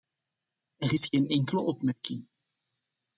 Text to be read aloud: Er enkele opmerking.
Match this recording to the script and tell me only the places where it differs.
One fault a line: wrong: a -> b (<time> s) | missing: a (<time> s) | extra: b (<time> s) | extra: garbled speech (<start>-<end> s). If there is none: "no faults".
extra: is geen (0.9 s)